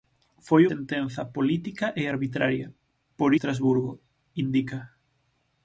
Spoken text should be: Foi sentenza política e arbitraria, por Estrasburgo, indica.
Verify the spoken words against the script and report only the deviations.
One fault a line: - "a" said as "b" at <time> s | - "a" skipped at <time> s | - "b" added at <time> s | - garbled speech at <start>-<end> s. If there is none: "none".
none